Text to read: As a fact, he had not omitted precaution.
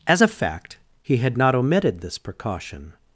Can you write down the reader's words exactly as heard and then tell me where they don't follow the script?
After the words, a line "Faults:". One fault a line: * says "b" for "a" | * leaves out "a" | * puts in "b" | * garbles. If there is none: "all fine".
As a fact, he had not omitted this precaution.
Faults:
* puts in "this"